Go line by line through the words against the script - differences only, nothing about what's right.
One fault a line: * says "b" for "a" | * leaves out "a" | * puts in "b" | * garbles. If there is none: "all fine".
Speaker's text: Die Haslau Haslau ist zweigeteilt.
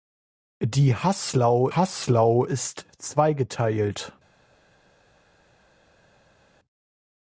all fine